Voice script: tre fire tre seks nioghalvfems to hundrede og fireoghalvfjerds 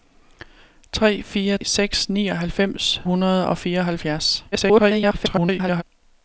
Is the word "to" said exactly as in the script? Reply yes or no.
no